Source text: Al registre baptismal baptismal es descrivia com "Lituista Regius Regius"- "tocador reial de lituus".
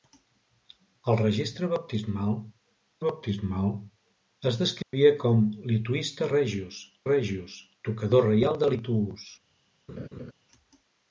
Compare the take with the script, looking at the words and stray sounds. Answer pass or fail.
fail